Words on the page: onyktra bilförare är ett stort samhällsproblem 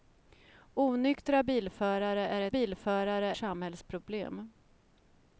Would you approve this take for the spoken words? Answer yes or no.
no